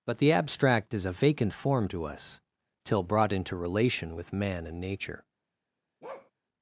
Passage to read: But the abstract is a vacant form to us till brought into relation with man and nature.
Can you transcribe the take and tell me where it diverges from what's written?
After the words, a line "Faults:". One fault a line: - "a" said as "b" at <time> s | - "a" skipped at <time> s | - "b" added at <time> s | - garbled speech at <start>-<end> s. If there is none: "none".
But the abstract is a vacant form to us till brought into relation with man and nature.
Faults:
none